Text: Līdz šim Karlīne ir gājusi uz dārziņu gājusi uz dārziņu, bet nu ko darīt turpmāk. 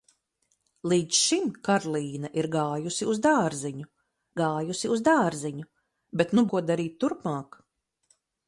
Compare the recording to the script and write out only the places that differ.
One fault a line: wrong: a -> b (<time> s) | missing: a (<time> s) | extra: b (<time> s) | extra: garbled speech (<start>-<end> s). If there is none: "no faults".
no faults